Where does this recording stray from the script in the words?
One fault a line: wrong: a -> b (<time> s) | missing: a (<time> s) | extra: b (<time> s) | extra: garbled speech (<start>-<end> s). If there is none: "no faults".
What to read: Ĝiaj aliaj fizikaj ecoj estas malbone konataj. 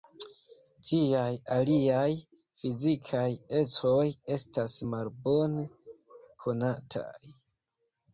no faults